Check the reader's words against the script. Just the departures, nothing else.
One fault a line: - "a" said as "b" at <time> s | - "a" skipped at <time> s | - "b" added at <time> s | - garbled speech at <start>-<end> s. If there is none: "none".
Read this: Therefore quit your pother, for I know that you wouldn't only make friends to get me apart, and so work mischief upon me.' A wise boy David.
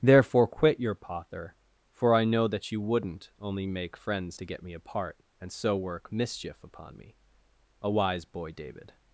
none